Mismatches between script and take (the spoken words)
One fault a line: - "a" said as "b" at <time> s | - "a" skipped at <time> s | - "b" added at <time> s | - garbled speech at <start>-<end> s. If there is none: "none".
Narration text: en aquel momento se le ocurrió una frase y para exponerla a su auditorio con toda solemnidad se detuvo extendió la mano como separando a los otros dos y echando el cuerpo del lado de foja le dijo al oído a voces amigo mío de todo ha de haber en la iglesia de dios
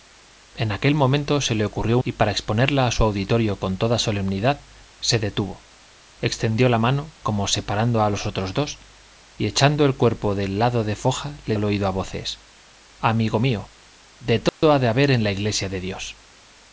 - "una frase" skipped at 2.0 s
- "dijo" skipped at 11.6 s